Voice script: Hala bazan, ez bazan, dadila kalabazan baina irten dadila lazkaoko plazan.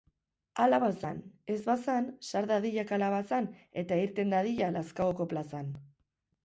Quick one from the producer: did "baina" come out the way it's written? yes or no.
no